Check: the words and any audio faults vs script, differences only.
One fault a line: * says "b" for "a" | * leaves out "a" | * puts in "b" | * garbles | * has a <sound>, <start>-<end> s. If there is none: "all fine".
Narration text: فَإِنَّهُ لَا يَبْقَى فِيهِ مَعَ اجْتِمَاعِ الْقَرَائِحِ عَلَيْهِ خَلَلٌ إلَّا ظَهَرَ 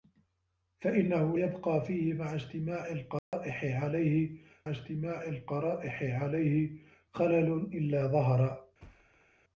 * leaves out "لَا"
* has a dropout, 3.2-3.3 s
* puts in "اجْتِمَاعِ الْقَرَائِحِ عَلَيْهِ"
* has a thud, 8.8-9.3 s